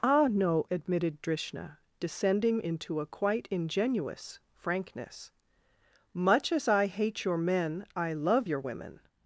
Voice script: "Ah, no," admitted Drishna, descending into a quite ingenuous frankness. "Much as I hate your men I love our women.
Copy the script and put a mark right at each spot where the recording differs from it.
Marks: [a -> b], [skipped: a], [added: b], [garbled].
"Ah, no," admitted Drishna, descending into a quite ingenuous frankness. "Much as I hate your men I love [our -> your] women.